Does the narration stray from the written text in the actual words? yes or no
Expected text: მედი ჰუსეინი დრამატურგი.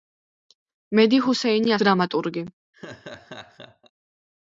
no